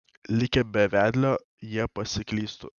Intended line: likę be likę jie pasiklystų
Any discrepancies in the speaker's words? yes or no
yes